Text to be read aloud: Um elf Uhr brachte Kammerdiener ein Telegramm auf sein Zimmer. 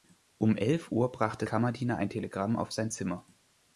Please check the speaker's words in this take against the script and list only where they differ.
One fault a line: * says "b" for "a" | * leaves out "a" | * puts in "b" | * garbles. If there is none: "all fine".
all fine